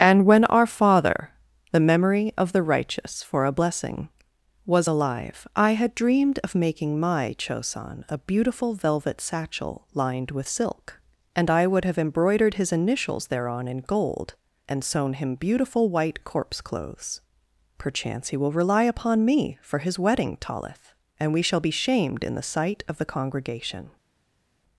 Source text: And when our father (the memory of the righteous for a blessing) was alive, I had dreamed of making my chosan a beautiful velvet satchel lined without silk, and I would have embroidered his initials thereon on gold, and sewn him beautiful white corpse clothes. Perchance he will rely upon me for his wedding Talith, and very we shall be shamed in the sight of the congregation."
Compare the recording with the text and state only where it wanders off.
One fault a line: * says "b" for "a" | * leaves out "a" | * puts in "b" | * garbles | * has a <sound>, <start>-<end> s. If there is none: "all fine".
* says "with" for "without"
* says "in" for "on"
* leaves out "very"